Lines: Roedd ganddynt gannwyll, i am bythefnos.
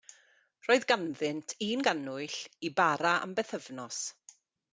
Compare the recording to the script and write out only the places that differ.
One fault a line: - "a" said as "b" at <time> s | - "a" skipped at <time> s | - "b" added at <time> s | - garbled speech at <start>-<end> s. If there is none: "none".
- "un" added at 1.7 s
- "bara" added at 2.8 s